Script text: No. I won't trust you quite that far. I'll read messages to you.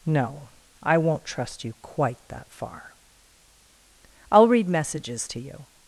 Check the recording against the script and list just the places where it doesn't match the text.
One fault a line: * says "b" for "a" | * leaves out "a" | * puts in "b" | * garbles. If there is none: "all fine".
all fine